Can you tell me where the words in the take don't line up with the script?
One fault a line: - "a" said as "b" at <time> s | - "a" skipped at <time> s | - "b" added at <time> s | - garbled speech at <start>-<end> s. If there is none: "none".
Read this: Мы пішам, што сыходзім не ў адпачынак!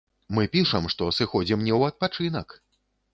none